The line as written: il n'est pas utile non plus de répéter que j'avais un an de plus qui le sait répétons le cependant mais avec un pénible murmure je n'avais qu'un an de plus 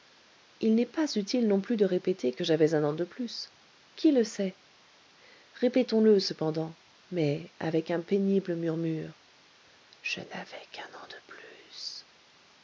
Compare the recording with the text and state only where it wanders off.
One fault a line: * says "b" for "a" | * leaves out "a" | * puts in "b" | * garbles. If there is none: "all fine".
all fine